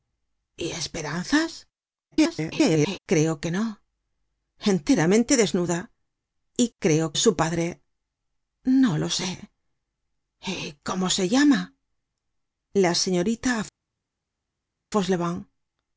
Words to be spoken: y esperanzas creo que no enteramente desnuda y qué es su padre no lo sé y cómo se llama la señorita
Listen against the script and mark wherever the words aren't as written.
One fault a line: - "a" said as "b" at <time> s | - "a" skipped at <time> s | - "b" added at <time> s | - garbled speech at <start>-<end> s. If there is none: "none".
- garbled speech at 2.1-3.0 s
- "qué" said as "creo" at 6.8 s